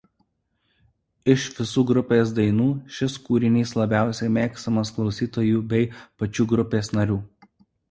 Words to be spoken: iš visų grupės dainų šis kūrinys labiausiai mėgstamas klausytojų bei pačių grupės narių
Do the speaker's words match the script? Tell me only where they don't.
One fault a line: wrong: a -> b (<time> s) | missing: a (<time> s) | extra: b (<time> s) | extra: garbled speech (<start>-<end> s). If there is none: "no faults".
no faults